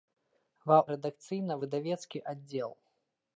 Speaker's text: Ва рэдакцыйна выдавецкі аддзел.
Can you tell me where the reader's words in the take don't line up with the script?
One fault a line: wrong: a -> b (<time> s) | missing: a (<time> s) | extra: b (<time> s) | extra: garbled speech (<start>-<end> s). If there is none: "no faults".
no faults